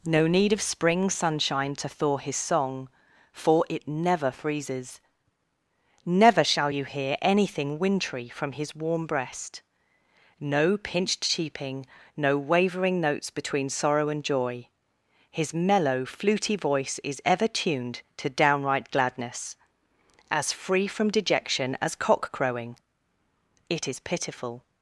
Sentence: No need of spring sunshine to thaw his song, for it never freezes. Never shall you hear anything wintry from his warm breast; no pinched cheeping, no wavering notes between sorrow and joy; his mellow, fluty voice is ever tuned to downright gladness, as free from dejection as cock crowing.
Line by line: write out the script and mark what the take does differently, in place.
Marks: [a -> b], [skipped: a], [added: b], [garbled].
No need of spring sunshine to thaw his song, for it never freezes. Never shall you hear anything wintry from his warm breast; no pinched cheeping, no wavering notes between sorrow and joy; his mellow, fluty voice is ever tuned to downright gladness, as free from dejection as cock crowing. [added: It is pitiful]